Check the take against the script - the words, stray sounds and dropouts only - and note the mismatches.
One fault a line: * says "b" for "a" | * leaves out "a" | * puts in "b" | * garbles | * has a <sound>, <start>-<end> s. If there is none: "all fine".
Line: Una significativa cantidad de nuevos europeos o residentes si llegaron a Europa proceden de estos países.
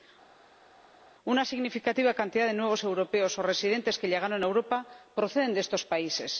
* says "que" for "si"